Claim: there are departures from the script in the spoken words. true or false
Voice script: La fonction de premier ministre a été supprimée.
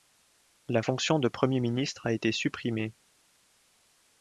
false